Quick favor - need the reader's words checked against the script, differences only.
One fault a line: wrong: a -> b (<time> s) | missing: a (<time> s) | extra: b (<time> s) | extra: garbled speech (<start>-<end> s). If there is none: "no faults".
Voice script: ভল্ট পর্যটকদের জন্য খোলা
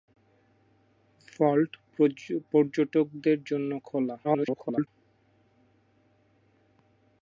extra: garbled speech (4.2-4.9 s)